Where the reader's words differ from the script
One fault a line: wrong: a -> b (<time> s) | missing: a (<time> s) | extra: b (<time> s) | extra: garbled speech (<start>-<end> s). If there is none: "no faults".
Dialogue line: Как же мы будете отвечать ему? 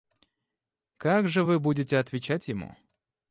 wrong: мы -> вы (1.4 s)